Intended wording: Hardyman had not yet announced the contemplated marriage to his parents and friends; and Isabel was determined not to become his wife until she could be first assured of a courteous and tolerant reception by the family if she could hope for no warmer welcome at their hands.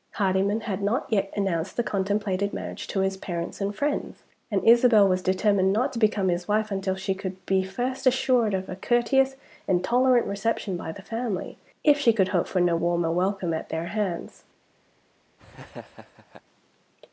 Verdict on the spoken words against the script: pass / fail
pass